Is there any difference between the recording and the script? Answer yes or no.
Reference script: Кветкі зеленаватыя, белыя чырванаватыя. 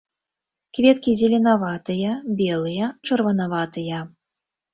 no